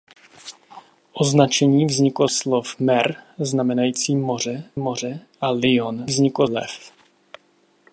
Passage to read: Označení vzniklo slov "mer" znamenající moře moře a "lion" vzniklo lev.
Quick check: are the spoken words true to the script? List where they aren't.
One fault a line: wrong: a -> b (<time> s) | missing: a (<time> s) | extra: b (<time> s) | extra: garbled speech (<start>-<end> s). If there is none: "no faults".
no faults